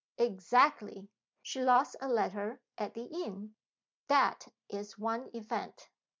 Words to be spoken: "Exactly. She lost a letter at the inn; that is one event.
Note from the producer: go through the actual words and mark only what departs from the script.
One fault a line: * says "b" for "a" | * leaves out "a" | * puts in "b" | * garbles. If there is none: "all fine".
all fine